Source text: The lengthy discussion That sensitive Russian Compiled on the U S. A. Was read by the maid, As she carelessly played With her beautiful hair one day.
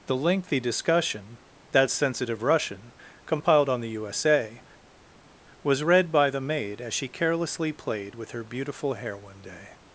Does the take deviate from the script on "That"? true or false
false